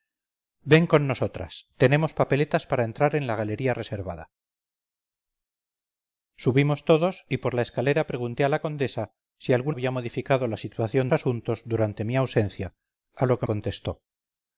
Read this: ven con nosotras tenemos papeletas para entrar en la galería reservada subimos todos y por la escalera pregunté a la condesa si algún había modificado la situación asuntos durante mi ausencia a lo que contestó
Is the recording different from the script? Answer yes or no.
no